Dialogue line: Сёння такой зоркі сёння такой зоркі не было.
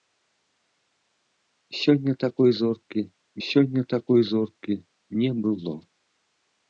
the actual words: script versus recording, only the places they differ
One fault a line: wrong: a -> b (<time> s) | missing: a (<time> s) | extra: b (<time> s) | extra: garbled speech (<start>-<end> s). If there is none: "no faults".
no faults